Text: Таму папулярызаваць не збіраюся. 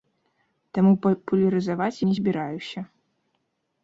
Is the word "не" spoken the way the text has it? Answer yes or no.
yes